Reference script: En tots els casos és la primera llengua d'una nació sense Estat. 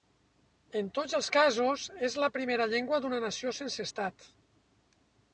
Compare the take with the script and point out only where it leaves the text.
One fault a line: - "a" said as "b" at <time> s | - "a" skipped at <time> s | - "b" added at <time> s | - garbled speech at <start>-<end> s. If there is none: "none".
none